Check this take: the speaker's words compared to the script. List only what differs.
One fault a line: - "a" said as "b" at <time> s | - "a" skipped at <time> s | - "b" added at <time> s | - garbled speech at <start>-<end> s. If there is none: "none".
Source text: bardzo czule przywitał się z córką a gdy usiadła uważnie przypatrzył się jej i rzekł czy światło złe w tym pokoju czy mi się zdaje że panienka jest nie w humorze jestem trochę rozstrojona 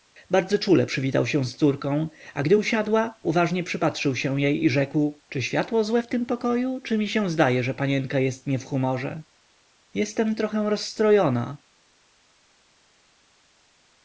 none